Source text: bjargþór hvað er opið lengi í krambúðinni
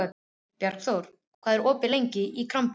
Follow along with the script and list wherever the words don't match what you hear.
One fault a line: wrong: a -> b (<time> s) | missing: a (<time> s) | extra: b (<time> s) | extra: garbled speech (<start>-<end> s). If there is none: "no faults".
no faults